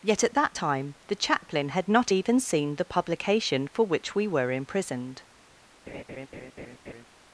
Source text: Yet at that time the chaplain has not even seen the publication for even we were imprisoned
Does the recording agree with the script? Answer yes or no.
no